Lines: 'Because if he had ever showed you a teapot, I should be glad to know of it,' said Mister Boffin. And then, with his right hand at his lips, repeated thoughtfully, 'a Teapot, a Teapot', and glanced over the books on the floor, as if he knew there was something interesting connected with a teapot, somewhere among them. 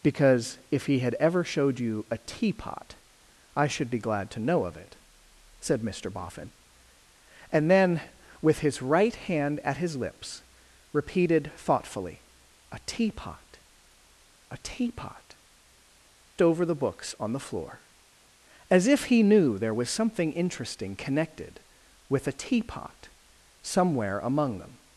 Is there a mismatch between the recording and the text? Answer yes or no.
yes